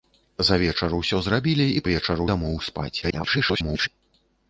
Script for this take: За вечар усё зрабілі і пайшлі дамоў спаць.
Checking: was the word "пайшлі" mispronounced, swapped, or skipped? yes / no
yes